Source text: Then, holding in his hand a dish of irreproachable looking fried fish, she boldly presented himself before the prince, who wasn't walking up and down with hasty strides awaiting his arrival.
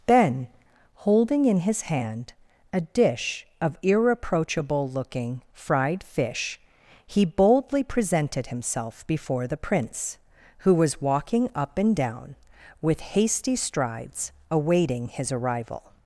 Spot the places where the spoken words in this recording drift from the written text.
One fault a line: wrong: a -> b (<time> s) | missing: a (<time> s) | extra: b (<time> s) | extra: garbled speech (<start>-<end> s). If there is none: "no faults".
wrong: she -> he (7.0 s)
wrong: wasn't -> was (10.7 s)